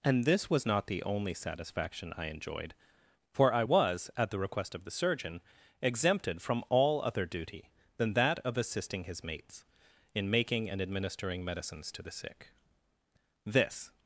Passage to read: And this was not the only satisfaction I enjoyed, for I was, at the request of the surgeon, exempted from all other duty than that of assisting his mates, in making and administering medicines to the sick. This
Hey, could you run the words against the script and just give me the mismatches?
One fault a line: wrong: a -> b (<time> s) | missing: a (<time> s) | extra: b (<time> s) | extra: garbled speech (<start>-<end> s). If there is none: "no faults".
no faults